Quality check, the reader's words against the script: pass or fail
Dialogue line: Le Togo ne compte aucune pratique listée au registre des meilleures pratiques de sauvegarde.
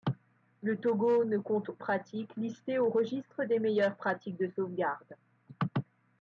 fail